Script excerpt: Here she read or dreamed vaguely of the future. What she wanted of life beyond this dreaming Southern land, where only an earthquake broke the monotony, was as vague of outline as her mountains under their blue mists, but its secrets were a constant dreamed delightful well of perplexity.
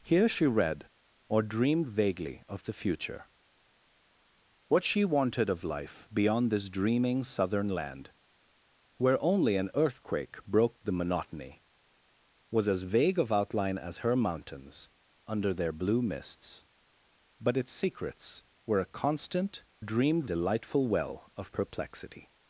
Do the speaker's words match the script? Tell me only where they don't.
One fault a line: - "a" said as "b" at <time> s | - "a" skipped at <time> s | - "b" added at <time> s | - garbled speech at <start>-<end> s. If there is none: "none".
none